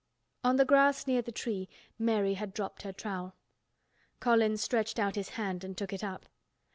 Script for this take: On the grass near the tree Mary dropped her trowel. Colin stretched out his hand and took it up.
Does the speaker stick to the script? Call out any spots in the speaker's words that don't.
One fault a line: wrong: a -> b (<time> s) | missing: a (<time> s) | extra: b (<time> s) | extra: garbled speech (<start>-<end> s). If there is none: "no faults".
extra: had (2.3 s)